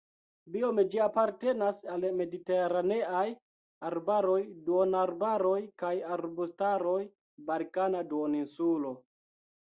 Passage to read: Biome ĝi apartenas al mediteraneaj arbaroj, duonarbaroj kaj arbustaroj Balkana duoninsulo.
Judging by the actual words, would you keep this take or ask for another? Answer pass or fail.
pass